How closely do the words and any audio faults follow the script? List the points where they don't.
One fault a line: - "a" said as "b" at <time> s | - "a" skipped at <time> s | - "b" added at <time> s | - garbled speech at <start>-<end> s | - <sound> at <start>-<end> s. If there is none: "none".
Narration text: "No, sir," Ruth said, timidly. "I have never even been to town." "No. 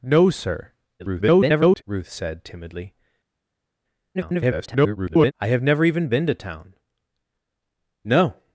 - garbled speech at 1.0-1.8 s
- garbled speech at 4.1-5.3 s